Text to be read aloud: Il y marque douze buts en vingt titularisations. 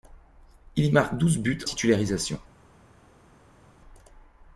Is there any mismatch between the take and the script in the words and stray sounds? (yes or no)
yes